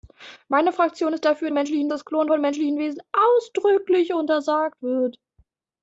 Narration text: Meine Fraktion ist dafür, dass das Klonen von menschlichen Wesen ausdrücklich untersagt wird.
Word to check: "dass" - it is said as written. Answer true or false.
false